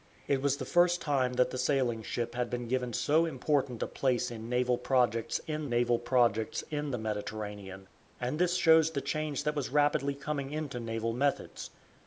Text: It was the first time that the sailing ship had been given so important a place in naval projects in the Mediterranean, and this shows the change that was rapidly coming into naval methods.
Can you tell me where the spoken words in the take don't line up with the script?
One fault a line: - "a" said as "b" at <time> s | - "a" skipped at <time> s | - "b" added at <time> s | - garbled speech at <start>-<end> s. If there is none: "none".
- "naval projects in" added at 5.7 s